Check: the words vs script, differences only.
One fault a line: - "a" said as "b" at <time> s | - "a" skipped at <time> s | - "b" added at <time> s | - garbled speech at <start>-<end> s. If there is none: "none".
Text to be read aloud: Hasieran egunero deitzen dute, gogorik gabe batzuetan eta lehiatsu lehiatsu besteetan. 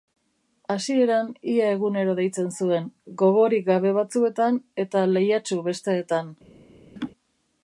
- "ia" added at 1.6 s
- "dute" said as "zuen" at 2.6 s
- "lehiatsu" skipped at 5.6 s